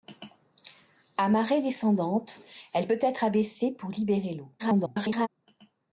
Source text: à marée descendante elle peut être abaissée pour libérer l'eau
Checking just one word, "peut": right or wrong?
right